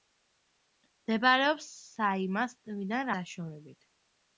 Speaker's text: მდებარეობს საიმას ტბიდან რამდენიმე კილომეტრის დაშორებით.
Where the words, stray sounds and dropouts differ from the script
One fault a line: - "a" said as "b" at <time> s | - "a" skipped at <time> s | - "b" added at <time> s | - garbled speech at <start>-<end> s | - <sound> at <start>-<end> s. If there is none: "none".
- "რამდენიმე კილომეტრის" skipped at 3.1 s